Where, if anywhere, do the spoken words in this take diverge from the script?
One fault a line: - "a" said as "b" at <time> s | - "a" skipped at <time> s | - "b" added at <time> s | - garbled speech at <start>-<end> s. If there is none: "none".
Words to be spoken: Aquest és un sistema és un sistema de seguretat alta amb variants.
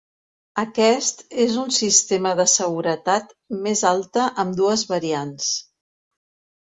- "és un sistema" skipped at 2.3 s
- "més" added at 3.7 s
- "dues" added at 4.6 s